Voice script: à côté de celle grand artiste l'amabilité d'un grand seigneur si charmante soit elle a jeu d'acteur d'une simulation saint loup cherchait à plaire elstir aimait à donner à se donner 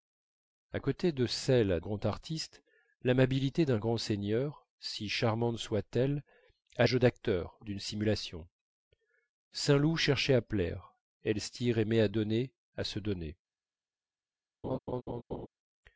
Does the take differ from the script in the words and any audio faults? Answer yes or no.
yes